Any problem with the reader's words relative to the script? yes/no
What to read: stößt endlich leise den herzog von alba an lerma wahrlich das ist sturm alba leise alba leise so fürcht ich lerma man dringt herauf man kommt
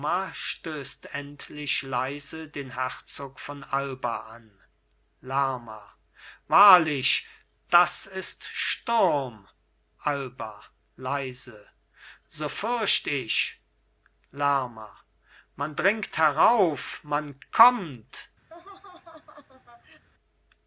yes